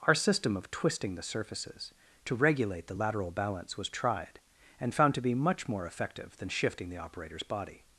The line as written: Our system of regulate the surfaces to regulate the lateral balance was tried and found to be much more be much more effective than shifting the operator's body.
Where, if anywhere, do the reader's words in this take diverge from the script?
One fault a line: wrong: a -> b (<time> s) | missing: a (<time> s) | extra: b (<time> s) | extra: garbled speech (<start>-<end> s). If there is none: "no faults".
wrong: regulate -> twisting (0.7 s)
missing: be much more (5.9 s)